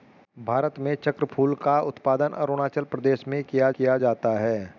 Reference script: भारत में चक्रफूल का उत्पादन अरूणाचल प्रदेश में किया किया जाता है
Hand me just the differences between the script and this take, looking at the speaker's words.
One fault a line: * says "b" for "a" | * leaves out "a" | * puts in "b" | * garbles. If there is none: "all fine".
all fine